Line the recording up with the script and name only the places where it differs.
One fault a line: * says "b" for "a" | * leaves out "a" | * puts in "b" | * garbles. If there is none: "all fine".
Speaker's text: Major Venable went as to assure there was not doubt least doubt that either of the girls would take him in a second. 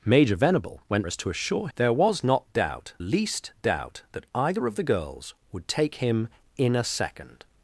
all fine